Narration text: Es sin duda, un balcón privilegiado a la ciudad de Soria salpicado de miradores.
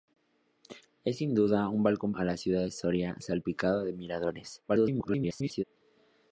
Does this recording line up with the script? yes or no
no